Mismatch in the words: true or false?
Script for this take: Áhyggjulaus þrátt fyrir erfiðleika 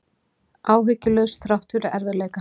false